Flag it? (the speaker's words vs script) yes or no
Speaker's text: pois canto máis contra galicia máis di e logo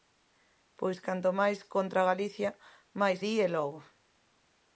no